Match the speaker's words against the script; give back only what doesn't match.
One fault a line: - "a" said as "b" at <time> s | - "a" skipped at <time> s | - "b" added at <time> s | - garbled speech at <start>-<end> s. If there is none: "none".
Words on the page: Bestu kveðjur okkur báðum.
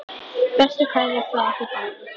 - "frá" added at 1.4 s